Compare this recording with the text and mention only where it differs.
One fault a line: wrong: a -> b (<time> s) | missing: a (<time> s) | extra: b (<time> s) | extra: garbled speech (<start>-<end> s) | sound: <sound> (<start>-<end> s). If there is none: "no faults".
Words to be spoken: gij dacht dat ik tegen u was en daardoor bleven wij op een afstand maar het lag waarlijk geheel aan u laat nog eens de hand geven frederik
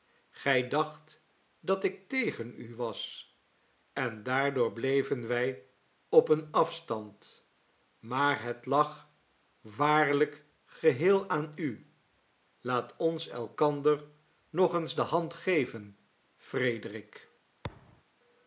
extra: ons elkander (13.0 s)
sound: thud (17.6-18.0 s)